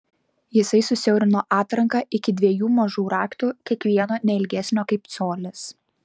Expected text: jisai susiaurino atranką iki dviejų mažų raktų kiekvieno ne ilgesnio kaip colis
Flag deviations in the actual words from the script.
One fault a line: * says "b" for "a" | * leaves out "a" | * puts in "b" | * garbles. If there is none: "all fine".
all fine